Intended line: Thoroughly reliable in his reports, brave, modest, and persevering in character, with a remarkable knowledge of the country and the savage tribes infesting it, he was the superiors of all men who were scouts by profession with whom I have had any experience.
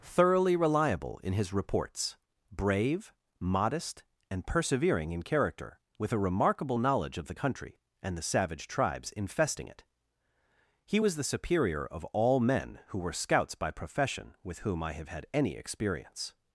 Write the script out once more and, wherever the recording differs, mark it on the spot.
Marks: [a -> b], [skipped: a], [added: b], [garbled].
Thoroughly reliable in his reports, brave, modest, and persevering in character, with a remarkable knowledge of the country and the savage tribes infesting it, he was the [superiors -> superior] of all men who were scouts by profession with whom I have had any experience.